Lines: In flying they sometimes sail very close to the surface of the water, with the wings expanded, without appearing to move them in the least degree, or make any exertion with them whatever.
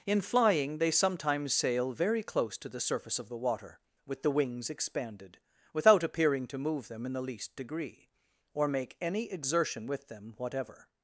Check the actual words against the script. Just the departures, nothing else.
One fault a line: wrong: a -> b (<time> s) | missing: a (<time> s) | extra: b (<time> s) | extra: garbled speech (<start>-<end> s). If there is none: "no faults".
no faults